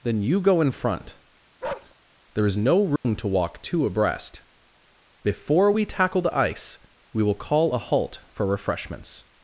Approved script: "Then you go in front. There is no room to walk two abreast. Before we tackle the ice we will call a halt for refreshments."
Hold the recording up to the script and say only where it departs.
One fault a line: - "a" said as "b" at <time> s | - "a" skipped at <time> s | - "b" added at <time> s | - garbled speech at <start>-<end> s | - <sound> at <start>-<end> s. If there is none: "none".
- bark at 1.6-1.9 s
- dropout at 3.0-3.0 s